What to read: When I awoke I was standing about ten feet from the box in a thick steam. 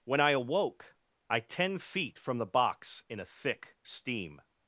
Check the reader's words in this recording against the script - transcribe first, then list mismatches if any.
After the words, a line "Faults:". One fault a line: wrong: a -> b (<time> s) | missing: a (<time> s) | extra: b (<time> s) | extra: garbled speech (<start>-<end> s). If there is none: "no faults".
When I awoke I ten feet from the box in a thick steam.
Faults:
missing: was standing about (1.4 s)